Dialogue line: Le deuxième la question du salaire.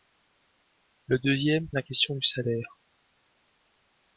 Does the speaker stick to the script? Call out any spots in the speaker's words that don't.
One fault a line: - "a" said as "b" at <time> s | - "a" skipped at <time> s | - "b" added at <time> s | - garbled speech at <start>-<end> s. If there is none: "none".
none